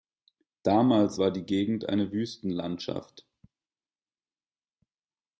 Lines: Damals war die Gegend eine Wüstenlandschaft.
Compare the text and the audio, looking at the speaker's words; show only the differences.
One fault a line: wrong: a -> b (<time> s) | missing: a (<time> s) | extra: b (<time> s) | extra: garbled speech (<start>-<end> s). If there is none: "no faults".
no faults